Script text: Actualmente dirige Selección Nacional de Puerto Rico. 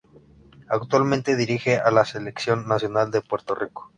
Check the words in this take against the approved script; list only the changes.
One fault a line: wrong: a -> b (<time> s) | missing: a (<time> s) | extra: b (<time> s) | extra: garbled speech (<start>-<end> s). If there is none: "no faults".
extra: a la (1.8 s)